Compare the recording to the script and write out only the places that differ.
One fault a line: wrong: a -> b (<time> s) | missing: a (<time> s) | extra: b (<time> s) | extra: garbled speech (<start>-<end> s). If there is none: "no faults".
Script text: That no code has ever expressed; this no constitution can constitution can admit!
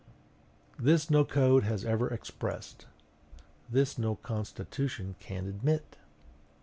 wrong: That -> This (0.8 s)
missing: constitution can (5.5 s)